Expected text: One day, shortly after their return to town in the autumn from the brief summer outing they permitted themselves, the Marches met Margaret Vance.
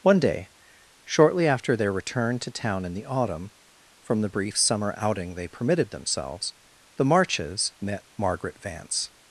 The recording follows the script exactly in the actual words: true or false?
true